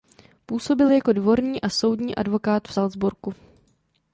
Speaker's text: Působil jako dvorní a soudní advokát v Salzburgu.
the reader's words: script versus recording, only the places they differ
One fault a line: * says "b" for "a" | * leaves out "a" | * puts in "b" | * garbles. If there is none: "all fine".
all fine